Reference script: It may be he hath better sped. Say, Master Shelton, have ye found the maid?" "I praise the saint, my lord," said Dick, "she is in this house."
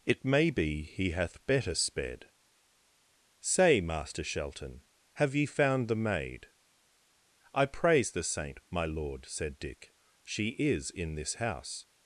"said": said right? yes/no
yes